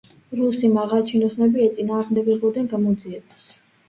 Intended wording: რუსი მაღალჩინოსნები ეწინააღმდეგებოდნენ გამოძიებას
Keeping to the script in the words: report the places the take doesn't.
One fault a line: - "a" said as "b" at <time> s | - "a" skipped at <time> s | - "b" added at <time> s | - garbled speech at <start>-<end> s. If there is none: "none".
none